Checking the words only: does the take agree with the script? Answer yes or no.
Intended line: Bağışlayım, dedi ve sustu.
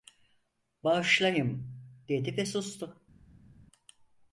yes